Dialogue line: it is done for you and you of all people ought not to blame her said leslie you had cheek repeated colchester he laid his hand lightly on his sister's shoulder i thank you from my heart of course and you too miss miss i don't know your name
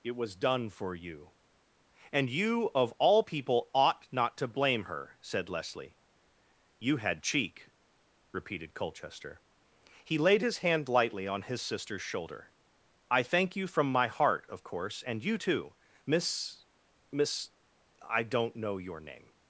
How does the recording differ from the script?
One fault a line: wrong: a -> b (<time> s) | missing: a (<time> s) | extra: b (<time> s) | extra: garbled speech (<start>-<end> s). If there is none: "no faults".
wrong: is -> was (0.1 s)